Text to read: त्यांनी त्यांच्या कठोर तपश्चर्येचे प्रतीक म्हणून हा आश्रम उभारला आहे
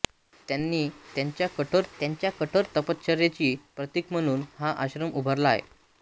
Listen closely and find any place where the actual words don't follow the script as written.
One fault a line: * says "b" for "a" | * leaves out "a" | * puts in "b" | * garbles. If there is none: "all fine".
* puts in "त्यांच्या कठोर"